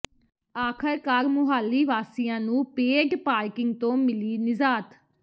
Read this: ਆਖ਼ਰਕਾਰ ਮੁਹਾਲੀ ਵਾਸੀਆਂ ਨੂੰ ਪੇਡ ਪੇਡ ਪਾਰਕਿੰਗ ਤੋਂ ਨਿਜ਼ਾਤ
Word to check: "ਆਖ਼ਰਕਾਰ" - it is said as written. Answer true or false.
true